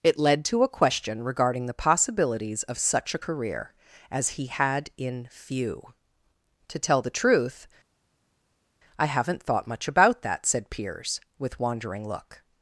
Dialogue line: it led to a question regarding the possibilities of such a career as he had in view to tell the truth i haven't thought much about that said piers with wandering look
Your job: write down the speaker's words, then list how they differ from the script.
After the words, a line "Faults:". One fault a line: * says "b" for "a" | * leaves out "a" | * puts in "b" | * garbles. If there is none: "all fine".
it led to a question regarding the possibilities of such a career as he had in few to tell the truth i haven't thought much about that said piers with wandering look
Faults:
* says "few" for "view"